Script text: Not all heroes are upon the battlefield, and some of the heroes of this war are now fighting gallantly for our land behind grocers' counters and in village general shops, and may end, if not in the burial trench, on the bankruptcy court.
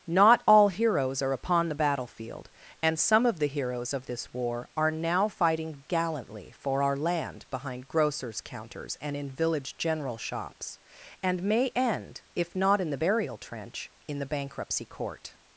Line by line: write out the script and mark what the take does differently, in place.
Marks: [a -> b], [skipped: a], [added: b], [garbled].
Not all heroes are upon the battlefield, and some of the heroes of this war are now fighting gallantly for our land behind grocers' counters and in village general shops, and may end, if not in the burial trench, [on -> in] the bankruptcy court.